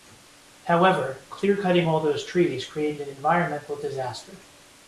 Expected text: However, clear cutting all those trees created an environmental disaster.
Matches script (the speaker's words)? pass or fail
pass